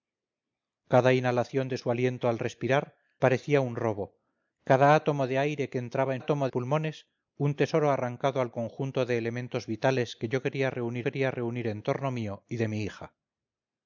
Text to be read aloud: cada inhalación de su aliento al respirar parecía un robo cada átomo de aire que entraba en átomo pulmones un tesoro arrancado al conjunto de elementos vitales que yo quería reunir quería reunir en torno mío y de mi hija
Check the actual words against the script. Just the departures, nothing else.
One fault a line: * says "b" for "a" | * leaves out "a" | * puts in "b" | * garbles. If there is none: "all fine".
all fine